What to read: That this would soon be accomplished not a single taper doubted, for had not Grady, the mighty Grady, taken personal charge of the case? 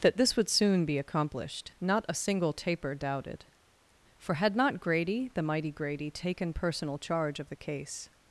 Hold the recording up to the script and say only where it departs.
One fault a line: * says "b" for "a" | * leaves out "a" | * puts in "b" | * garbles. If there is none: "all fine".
all fine